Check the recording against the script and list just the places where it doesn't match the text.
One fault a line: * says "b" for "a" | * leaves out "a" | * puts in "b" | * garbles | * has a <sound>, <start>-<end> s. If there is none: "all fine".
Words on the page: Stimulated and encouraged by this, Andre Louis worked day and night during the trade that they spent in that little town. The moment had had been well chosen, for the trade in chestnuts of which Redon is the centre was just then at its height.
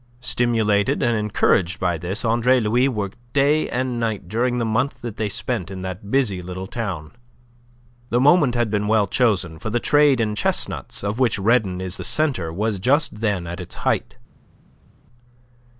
* says "month" for "trade"
* puts in "busy"
* leaves out "had"